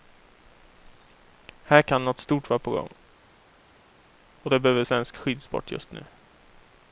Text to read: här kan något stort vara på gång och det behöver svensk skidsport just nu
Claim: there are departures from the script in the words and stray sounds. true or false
false